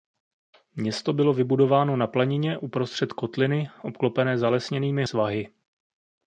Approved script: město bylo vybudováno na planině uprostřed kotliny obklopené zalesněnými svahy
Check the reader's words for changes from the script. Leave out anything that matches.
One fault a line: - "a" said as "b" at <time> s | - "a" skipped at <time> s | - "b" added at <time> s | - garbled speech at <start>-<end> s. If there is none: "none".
none